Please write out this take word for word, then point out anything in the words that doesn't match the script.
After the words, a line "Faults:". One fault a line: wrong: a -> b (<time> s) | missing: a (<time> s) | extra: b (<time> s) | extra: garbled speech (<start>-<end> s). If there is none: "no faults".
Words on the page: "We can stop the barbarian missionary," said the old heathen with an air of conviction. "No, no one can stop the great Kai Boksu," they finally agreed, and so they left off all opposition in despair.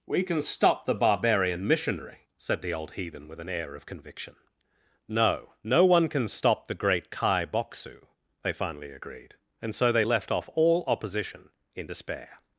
"We can stop the barbarian missionary," said the old heathen with an air of conviction. "No, no one can stop the great Kai Boksu," they finally agreed, and so they left off all opposition in despair.
Faults:
no faults